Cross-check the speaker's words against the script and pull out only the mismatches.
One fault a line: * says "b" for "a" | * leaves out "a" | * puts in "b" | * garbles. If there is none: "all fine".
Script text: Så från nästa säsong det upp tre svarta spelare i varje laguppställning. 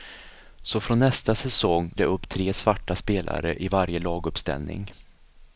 all fine